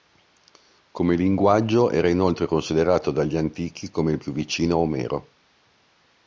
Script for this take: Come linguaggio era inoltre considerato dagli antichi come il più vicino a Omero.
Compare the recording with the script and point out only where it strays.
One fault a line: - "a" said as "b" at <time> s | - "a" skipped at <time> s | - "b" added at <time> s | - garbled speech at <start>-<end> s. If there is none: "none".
none